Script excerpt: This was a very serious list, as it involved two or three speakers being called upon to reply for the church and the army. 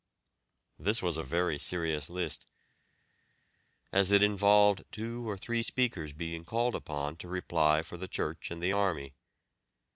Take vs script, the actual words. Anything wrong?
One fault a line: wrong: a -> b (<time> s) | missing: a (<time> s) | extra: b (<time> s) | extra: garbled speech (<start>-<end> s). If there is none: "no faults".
no faults